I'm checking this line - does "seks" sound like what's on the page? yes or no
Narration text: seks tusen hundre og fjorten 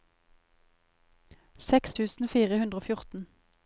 yes